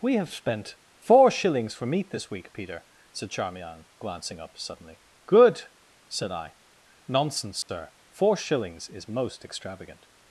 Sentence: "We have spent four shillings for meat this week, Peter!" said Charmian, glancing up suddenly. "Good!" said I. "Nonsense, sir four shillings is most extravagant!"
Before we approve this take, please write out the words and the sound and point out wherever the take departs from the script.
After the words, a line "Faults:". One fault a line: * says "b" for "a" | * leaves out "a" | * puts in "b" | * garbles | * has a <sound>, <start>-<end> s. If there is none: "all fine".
"We have spent four shillings for meat this week, Peter!" said Charmian, glancing up suddenly. "Good!" said I. "Nonsense, sir four shillings is most extravagant!"
Faults:
* has a dropout, 7.6-7.7 s